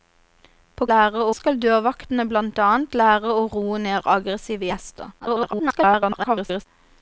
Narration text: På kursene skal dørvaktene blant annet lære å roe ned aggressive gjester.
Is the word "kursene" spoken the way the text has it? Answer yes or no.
no